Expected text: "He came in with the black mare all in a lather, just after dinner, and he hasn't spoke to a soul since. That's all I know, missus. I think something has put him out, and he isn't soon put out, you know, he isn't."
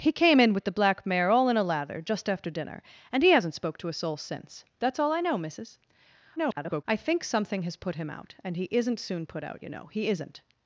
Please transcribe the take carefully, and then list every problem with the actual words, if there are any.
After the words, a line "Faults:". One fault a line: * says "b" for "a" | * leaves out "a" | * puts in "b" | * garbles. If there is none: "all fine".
"He came in with the black mare all in a lather, just after dinner, and he hasn't spoke to a soul since. That's all I know, missus. [garbled] I think something has put him out, and he isn't soon put out, you know, he isn't."
Faults:
* garbles